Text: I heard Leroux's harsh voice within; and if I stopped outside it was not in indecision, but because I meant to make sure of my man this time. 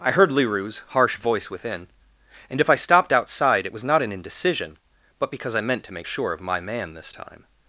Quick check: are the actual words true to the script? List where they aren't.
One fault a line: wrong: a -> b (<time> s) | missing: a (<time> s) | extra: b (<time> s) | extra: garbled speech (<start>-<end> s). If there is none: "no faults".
no faults